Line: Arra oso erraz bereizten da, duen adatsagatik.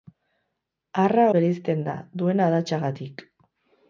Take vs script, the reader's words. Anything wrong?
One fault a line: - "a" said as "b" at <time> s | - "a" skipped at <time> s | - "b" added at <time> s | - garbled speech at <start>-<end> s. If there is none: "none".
- "oso erraz" skipped at 1.3 s